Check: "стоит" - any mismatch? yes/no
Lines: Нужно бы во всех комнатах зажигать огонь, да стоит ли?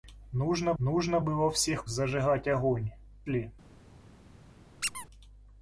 yes